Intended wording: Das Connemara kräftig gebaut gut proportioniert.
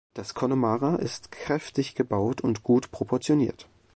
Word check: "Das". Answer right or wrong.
right